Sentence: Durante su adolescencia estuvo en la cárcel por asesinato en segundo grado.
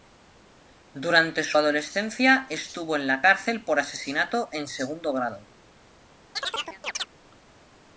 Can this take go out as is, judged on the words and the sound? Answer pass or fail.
fail